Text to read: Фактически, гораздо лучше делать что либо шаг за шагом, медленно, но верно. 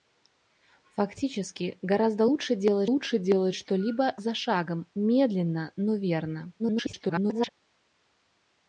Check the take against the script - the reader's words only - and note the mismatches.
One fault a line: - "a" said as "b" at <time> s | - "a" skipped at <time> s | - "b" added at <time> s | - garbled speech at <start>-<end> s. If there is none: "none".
- "лучше делать" added at 2.8 s
- "шаг" skipped at 4.2 s
- garbled speech at 6.6-7.5 s